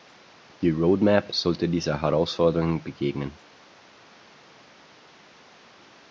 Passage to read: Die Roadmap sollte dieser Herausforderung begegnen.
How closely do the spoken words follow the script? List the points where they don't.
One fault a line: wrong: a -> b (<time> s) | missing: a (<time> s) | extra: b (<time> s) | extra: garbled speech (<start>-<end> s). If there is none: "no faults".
no faults